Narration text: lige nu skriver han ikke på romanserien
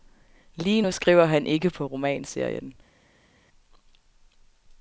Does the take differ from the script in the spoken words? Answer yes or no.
no